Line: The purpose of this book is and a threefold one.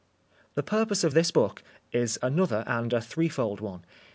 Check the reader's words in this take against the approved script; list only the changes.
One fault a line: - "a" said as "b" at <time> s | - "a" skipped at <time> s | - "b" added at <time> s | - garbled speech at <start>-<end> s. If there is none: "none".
- "another" added at 2.2 s